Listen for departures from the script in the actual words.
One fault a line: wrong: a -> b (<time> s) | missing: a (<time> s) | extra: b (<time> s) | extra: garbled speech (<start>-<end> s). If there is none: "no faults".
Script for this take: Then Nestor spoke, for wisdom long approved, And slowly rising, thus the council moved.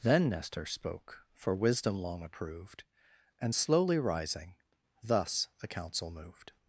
no faults